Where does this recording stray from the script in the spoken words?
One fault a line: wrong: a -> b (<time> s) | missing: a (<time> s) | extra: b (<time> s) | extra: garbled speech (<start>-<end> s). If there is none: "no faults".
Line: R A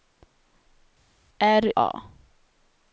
no faults